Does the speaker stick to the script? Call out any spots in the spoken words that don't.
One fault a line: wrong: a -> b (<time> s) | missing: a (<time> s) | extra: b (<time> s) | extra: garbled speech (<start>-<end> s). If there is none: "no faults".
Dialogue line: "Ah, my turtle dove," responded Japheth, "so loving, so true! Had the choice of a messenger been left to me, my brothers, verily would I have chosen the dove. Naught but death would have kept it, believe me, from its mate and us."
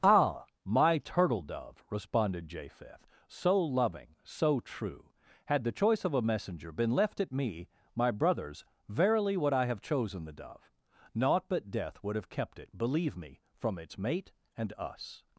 wrong: to -> at (7.2 s)